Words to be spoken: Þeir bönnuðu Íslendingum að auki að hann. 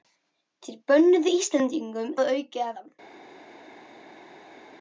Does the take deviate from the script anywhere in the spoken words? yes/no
no